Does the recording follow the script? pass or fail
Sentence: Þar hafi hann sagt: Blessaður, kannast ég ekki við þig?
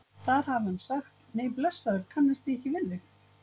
fail